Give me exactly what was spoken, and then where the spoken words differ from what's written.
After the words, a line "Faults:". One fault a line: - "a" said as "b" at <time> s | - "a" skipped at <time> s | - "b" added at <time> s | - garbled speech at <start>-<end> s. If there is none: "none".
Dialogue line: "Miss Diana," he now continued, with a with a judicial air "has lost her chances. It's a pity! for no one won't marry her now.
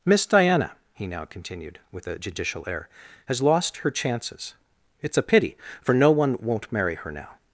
"Miss Diana," he now continued, with a judicial air "has lost her chances. It's a pity! for no one won't marry her now.
Faults:
- "with a" skipped at 2.2 s